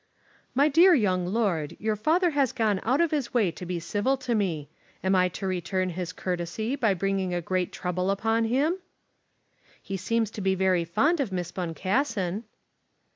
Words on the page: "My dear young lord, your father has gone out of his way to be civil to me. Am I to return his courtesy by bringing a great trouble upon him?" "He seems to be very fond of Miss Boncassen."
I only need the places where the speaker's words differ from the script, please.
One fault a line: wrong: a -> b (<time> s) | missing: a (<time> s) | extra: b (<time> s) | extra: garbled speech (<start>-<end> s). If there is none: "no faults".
no faults